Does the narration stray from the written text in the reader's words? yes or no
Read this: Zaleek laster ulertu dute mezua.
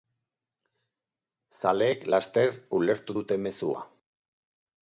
no